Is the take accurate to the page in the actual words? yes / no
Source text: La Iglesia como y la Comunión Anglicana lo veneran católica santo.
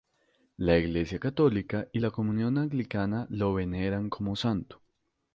no